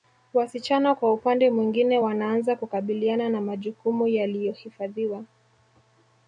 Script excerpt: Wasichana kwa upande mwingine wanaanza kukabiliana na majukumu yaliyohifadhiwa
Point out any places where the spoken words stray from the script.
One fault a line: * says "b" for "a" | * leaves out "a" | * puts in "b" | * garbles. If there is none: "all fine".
all fine